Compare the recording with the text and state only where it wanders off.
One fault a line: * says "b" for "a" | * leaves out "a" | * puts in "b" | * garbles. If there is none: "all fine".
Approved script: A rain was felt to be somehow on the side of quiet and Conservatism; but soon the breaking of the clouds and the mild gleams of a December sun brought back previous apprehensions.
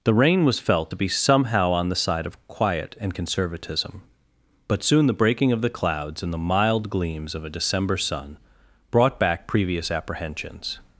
* says "The" for "A"